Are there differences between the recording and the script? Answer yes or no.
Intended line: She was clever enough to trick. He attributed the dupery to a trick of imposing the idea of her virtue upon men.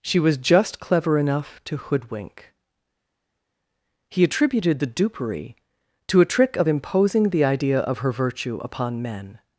yes